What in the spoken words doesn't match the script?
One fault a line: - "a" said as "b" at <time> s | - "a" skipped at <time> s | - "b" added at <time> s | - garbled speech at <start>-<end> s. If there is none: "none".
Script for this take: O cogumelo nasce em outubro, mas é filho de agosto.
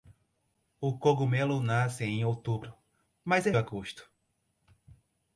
- "filho de" skipped at 3.5 s